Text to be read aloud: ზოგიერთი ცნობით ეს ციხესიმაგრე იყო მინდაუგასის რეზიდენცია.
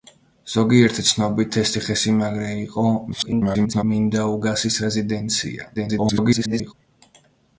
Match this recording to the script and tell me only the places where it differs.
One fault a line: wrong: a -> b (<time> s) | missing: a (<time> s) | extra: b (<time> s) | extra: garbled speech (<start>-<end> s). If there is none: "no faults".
extra: garbled speech (3.1-3.8 s)
extra: garbled speech (5.7-6.7 s)